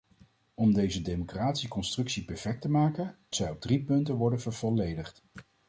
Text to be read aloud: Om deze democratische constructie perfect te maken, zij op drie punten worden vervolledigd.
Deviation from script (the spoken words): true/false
false